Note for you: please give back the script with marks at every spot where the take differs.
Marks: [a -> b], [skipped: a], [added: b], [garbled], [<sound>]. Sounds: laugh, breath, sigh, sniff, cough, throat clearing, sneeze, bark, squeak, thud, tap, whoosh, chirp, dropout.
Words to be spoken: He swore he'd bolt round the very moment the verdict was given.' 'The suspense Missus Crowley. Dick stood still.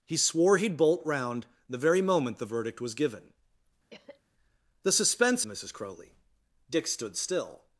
He swore he'd bolt round the very moment the verdict was given.' [cough] 'The suspense Missus Crowley. Dick stood still.